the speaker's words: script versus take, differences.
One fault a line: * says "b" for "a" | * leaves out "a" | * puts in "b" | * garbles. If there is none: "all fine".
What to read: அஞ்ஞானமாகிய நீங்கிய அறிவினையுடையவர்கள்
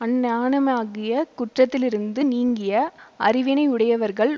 * puts in "குற்றத்திலிருந்து"